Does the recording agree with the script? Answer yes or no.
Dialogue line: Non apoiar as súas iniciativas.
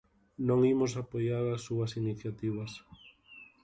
no